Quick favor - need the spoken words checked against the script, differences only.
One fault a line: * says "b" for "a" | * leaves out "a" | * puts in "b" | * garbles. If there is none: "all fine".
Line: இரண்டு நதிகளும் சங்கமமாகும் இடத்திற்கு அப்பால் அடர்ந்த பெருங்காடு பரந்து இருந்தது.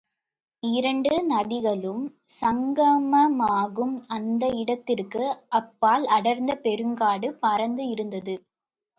* puts in "அந்த"